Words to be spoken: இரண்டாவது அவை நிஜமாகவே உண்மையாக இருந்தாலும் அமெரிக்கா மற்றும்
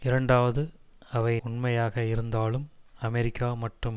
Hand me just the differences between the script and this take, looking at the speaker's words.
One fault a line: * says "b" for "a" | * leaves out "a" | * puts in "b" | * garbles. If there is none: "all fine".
* leaves out "நிஜமாகவே"